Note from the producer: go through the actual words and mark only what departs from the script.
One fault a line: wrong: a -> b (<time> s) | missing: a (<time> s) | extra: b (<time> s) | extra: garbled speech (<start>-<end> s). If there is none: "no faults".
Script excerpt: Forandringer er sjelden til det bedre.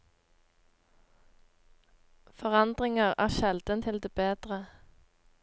no faults